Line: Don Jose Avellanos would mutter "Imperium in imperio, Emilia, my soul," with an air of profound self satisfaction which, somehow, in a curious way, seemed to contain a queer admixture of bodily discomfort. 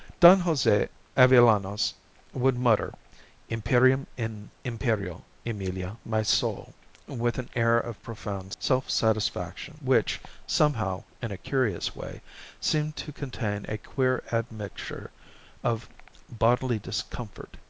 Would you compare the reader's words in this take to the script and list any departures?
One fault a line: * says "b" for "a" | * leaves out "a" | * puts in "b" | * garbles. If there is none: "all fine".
all fine